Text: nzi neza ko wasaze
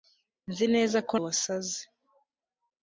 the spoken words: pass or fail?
pass